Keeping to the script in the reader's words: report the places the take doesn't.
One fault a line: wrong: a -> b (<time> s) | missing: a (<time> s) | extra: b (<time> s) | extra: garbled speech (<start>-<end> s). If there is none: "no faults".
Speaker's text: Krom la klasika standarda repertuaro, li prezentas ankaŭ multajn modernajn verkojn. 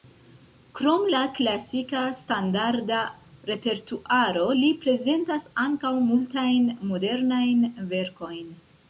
no faults